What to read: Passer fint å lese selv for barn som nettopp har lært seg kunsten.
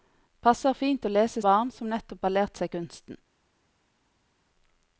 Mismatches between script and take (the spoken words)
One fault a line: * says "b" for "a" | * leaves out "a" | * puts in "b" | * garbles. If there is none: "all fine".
* leaves out "selv for"